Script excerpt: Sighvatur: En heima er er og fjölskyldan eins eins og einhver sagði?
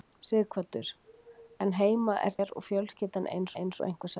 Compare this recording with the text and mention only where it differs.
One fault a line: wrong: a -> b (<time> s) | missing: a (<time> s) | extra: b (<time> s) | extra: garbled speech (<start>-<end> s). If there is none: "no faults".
no faults